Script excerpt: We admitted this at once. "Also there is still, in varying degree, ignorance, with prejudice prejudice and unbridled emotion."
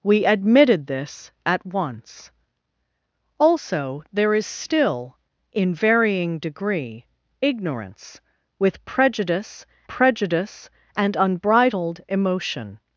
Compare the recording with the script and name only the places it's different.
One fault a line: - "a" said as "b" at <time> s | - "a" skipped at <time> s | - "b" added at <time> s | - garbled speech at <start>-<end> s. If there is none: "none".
none